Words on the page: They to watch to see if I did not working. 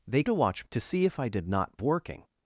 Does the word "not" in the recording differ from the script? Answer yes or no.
no